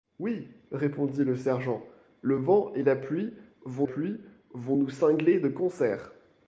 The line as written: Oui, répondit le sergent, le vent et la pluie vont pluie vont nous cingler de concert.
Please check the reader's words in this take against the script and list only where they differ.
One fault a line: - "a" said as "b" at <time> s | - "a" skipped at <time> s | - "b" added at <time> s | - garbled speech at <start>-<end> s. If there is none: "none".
none